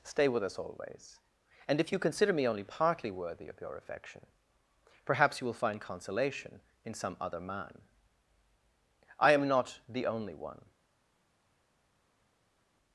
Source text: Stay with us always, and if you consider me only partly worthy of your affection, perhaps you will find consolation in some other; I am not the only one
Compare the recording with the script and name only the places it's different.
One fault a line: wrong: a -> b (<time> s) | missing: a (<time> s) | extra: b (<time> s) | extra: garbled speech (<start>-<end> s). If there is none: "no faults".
extra: man (7.4 s)